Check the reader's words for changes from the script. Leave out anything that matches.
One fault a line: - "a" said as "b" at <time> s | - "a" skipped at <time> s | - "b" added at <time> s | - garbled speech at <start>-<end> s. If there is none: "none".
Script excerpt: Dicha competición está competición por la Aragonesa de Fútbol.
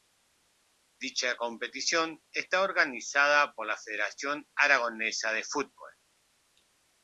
- "competición" said as "organizada" at 2.6 s
- "Federación" added at 3.8 s